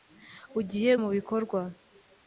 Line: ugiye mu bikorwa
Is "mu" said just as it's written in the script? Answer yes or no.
yes